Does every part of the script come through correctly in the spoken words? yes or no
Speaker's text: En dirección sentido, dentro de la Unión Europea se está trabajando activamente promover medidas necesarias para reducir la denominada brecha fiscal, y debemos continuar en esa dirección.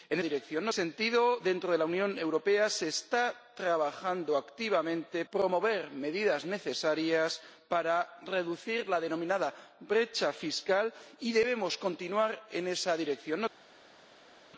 yes